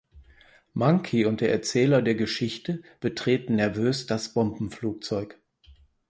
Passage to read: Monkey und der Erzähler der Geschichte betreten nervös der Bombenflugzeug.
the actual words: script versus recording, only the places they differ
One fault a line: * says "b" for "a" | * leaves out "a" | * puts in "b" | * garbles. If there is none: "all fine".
* says "das" for "der"